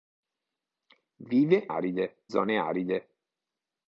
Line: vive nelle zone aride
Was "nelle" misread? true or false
true